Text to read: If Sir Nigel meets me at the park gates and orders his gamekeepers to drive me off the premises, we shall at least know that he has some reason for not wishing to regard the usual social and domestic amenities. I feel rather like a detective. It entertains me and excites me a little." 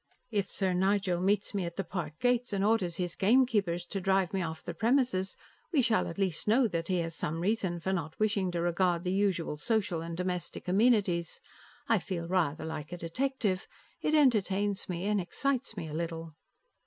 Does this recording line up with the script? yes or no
yes